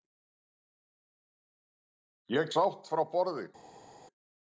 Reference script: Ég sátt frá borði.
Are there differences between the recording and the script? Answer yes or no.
no